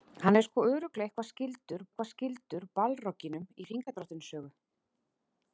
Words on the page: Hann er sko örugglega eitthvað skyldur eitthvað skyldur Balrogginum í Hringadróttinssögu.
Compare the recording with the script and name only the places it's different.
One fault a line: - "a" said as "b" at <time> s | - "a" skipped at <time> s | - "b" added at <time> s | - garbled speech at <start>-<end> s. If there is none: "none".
none